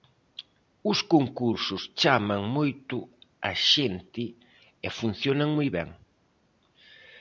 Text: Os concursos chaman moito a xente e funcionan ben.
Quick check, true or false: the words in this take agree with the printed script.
false